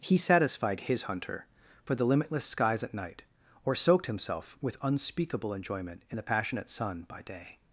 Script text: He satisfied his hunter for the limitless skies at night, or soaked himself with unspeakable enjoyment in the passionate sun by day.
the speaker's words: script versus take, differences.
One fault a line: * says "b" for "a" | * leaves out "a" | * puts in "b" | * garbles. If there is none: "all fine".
all fine